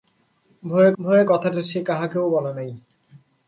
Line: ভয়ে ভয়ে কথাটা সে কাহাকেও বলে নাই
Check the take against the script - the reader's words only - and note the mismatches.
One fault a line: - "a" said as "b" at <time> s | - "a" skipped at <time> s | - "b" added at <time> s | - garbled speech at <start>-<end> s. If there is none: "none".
none